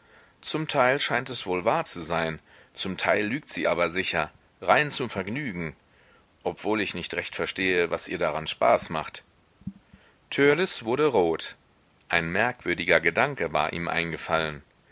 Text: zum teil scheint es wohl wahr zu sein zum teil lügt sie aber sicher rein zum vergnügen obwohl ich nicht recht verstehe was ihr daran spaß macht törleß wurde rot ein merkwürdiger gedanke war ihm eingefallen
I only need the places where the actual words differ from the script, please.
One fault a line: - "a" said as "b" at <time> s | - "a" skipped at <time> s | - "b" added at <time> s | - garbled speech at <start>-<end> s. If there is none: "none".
none